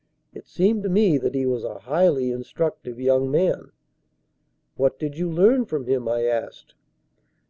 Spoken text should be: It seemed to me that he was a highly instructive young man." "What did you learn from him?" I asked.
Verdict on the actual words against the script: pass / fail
pass